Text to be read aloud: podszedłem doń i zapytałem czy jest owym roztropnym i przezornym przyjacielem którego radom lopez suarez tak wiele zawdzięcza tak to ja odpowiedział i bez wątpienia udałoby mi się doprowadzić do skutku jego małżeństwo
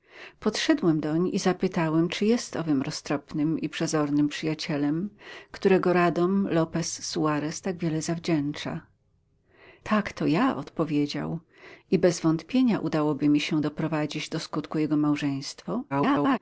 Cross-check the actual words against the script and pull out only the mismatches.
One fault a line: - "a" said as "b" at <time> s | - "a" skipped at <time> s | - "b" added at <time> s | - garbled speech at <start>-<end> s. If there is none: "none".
- garbled speech at 15.9-16.4 s